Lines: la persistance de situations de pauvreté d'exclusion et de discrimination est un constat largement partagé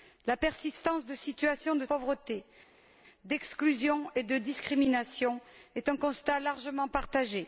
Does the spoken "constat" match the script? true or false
true